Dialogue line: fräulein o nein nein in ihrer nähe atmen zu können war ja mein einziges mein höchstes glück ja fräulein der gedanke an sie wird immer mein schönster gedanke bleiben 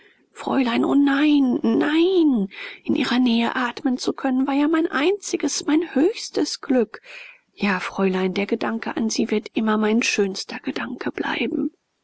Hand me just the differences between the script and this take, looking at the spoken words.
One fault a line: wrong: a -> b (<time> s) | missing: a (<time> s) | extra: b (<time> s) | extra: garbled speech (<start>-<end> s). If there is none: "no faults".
no faults